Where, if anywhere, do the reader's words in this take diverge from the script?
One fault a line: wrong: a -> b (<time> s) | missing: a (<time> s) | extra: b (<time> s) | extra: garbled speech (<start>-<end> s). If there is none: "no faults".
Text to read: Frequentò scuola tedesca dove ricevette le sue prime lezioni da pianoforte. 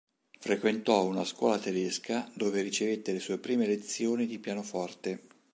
extra: una (1.1 s)
wrong: da -> di (4.2 s)